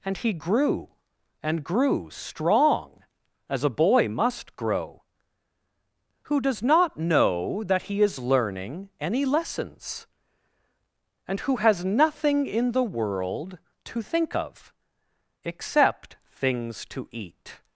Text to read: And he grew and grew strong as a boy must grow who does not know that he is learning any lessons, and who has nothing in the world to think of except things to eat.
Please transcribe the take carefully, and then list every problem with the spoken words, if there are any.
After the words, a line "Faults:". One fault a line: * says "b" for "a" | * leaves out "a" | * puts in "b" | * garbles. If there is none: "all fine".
And he grew and grew strong as a boy must grow who does not know that he is learning any lessons, and who has nothing in the world to think of except things to eat.
Faults:
all fine